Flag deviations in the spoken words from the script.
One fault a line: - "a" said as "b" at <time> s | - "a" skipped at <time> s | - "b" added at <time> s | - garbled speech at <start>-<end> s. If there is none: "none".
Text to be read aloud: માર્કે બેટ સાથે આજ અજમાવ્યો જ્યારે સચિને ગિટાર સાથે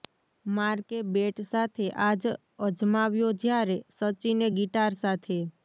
none